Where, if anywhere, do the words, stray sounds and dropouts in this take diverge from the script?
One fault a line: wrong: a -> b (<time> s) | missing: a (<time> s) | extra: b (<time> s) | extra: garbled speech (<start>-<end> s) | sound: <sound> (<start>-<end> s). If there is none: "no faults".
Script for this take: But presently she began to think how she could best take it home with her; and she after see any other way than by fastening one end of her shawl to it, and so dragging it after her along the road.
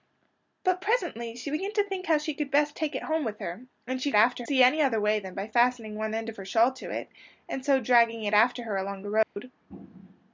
sound: dropout (9.2-9.4 s)